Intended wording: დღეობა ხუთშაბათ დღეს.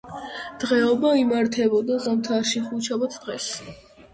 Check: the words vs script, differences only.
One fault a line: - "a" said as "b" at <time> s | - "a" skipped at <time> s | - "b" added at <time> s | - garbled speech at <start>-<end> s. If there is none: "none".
- "იმართებოდა ზამთარში" added at 1.2 s